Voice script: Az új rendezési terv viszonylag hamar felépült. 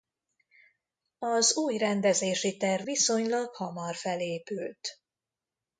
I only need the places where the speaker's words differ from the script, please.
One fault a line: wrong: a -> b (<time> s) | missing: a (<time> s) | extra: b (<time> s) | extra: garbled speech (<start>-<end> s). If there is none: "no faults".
no faults